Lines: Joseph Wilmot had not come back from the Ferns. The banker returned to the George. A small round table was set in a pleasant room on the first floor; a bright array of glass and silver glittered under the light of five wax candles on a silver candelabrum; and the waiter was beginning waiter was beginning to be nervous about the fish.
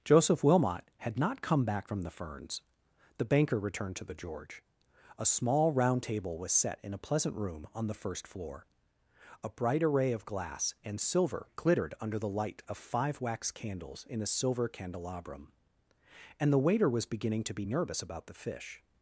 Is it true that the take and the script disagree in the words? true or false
true